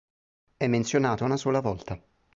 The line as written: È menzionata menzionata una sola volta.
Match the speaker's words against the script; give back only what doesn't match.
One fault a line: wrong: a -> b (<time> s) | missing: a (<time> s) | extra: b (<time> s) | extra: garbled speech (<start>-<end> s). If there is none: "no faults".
missing: menzionata (1.2 s)